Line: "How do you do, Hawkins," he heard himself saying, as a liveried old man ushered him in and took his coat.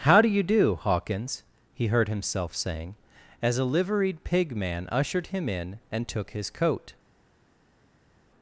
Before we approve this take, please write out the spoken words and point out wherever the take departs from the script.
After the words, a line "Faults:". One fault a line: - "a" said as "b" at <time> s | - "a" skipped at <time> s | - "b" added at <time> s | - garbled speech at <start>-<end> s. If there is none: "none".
"How do you do, Hawkins," he heard himself saying, as a liveried pig man ushered him in and took his coat.
Faults:
- "old" said as "pig" at 4.2 s